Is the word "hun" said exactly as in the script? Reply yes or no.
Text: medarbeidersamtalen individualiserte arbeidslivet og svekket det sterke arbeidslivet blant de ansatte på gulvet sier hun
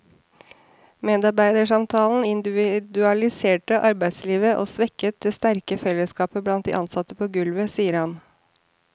no